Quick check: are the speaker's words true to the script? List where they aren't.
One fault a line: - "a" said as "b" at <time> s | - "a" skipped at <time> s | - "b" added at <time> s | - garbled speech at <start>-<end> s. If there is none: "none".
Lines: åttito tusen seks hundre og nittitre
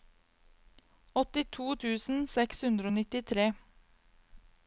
none